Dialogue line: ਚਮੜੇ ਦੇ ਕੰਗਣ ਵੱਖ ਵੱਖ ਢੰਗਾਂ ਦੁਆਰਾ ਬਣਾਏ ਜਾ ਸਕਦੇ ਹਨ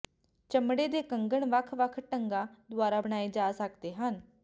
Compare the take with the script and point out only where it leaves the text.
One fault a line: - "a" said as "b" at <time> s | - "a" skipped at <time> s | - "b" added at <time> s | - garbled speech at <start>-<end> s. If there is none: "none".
none